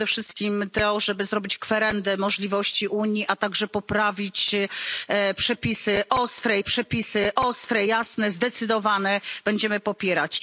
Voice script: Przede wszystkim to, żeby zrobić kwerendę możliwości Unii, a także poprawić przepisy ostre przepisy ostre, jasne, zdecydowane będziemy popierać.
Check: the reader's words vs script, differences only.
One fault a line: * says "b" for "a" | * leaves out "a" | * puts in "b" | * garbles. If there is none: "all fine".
all fine